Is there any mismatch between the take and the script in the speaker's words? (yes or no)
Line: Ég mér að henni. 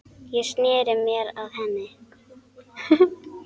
yes